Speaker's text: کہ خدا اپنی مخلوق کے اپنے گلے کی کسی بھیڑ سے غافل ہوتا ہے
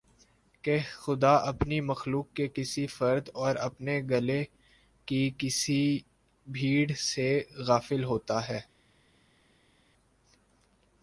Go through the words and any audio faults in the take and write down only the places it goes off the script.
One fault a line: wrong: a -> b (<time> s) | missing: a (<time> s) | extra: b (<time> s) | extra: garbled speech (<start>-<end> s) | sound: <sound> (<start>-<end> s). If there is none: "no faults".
extra: کسی فرد اور (2.5 s)